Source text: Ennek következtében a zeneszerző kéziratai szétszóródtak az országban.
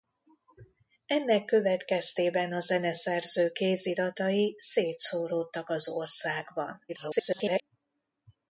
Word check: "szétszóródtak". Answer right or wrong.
right